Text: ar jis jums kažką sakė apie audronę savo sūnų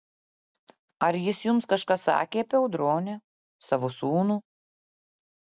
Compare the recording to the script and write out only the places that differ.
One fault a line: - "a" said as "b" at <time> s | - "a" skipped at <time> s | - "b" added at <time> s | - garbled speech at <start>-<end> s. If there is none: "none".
none